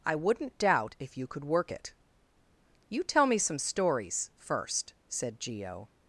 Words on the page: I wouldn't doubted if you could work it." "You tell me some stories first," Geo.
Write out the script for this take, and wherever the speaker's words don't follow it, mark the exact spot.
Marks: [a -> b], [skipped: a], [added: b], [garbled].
I wouldn't [doubted -> doubt] if you could work it." "You tell me some stories first," [added: said] Geo.